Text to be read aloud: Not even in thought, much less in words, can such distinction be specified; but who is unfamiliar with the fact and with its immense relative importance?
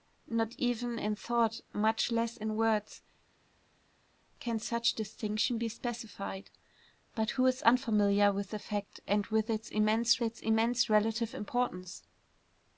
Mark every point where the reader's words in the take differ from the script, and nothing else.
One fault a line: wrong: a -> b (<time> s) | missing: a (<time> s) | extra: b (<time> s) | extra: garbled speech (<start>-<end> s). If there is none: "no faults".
extra: its immense (10.2 s)